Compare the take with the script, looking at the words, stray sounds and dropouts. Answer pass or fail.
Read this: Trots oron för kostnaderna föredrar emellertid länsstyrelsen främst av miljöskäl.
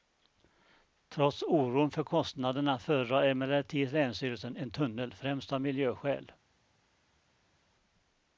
fail